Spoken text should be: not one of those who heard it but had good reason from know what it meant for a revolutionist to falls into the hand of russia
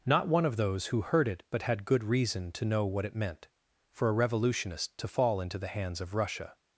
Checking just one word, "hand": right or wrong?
wrong